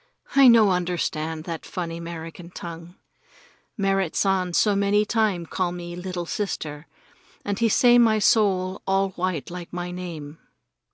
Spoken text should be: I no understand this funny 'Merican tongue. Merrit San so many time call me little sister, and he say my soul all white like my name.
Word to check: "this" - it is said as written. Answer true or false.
false